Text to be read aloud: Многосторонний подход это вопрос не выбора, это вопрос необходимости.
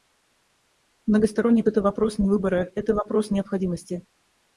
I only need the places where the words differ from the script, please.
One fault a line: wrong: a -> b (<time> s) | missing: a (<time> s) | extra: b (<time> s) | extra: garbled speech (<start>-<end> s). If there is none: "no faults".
missing: подход (1.6 s)